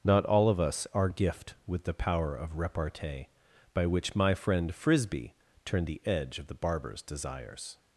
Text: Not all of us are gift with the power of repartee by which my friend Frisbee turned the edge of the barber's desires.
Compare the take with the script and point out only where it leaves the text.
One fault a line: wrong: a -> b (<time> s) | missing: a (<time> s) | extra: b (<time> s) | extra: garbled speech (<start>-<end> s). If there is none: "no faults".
no faults